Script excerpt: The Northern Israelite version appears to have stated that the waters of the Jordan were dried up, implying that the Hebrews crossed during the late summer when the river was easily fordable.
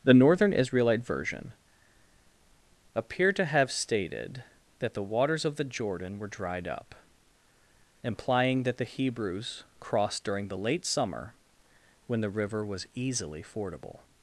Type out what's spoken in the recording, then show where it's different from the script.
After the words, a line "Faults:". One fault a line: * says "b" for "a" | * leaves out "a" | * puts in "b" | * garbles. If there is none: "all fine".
The Northern Israelite version appear to have stated that the waters of the Jordan were dried up, implying that the Hebrews crossed during the late summer when the river was easily fordable.
Faults:
* says "appear" for "appears"